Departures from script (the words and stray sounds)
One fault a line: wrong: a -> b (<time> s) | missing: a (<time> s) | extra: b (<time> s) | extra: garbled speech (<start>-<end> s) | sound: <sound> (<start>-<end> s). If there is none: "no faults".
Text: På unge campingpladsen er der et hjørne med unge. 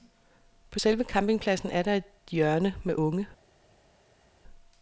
wrong: unge -> selve (0.8 s)